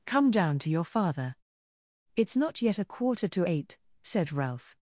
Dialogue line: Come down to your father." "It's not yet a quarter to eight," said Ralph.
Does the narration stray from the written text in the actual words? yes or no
no